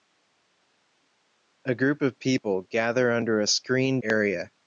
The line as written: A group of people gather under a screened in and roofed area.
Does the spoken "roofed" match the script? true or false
false